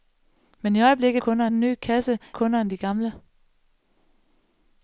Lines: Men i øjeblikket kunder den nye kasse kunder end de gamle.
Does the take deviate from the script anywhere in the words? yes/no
no